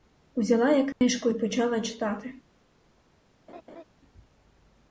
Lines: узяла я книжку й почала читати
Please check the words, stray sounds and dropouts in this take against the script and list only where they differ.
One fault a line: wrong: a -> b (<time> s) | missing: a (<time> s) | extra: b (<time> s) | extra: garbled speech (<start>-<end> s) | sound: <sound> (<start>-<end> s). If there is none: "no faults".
sound: dropout (0.9-1.0 s)
sound: laugh (3.5-3.8 s)